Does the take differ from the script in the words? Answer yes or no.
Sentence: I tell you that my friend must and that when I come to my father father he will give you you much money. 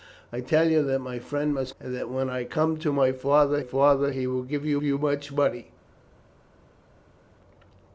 no